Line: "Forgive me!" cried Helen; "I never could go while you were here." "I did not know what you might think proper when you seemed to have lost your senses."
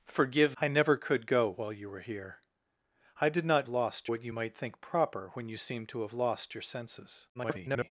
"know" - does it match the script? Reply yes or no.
no